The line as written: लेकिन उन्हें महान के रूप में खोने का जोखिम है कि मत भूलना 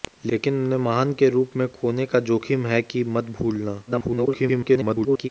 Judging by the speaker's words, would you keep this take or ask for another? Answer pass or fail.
fail